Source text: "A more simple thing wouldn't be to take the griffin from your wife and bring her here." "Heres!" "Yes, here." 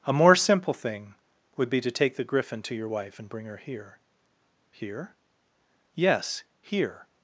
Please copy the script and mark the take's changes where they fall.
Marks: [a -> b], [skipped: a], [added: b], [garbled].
"A more simple thing [wouldn't -> would] be to take the griffin [from -> to] your wife and bring her here." ["Heres!" -> Here] "Yes, here."